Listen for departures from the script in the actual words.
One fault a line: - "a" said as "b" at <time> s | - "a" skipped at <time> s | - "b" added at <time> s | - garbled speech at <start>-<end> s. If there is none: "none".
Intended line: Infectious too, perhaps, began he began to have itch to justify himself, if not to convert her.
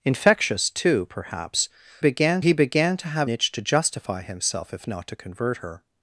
none